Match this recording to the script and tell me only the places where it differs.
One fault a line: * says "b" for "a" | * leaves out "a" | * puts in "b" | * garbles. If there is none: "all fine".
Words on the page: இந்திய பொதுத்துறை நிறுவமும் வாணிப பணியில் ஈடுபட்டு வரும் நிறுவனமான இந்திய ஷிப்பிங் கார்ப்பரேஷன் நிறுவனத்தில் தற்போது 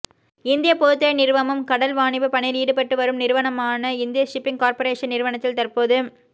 * puts in "கடல்"